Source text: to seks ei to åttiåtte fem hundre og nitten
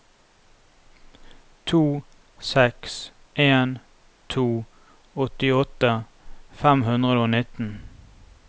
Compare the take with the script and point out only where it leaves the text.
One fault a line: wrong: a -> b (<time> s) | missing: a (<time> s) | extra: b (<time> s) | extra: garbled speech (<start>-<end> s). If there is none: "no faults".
wrong: ei -> en (3.4 s)